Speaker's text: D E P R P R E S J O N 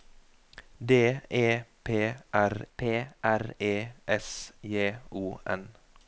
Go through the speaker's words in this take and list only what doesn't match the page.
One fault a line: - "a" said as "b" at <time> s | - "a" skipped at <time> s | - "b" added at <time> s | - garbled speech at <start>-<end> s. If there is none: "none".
none